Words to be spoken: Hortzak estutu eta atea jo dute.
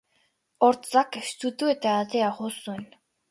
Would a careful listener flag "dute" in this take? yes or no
yes